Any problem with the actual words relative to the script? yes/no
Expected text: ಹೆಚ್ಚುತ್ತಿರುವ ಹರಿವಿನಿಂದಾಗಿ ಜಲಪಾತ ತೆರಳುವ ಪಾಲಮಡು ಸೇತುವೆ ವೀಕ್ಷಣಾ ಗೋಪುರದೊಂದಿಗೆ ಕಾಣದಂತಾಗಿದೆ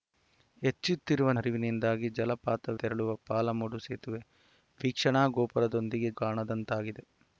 no